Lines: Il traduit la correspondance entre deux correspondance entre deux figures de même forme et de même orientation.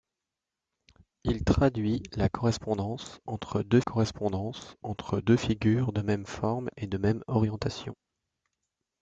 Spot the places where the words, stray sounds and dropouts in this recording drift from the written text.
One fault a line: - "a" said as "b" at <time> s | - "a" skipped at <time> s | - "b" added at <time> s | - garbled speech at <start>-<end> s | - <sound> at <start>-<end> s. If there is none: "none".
none